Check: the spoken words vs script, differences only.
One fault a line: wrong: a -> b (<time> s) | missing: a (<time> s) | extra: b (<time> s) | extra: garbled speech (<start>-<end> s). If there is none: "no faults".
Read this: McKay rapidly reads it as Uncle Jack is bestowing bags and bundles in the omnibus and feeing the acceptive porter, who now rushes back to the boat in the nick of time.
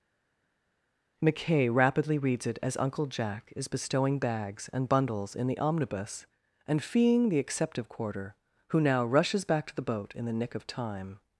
wrong: porter -> quarter (7.9 s)